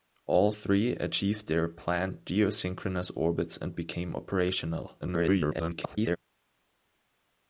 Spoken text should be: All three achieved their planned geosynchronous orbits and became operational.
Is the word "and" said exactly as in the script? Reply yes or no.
yes